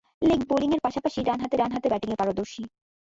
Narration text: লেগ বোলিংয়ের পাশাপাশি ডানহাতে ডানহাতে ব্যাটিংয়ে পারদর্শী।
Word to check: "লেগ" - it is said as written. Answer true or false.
true